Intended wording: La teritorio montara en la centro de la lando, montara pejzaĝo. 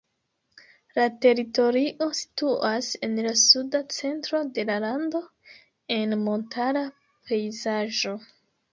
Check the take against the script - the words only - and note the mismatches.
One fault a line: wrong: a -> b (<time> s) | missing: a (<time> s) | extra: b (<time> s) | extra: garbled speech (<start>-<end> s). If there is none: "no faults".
wrong: montara -> situas (2.2 s)
extra: suda (3.4 s)
extra: en (6.0 s)